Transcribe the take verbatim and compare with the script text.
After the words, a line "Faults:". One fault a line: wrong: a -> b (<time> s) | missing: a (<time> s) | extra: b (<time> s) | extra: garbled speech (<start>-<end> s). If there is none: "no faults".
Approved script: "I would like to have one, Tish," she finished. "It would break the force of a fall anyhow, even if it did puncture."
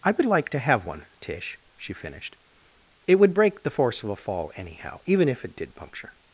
"I would like to have one, Tish," she finished. "It would break the force of a fall anyhow, even if it did puncture."
Faults:
no faults